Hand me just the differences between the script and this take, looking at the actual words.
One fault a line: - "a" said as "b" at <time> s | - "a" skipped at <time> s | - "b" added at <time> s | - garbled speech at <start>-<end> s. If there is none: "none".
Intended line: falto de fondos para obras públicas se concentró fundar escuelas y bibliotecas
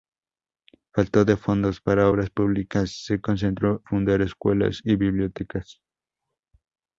none